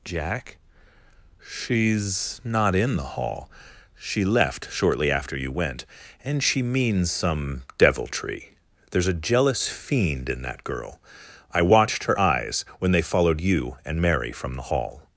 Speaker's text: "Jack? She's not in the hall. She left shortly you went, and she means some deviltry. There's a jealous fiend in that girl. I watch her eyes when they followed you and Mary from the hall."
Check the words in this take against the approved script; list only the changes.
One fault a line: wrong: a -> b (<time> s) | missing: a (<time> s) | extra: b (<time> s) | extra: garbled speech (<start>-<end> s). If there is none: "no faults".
extra: after (5.1 s)
wrong: watch -> watched (11.6 s)